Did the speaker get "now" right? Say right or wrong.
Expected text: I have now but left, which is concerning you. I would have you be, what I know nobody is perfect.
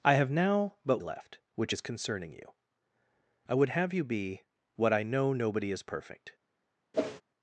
right